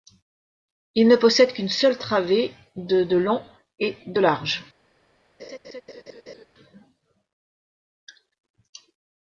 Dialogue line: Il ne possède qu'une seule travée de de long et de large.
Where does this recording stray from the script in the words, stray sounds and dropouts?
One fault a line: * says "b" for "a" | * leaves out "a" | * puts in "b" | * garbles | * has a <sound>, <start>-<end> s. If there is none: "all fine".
* has a laugh, 5.4-6.5 s